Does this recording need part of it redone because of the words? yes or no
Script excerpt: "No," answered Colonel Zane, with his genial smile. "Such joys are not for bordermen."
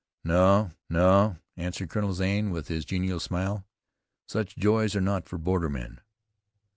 yes